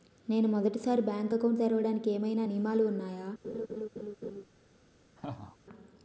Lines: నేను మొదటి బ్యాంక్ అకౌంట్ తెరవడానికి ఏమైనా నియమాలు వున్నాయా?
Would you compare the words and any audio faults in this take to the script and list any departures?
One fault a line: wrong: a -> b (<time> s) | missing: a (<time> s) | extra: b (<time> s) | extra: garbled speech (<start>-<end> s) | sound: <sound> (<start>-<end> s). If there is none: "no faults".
extra: సారి (0.8 s)
sound: laugh (3.4-4.4 s)
sound: laugh (5.2-5.6 s)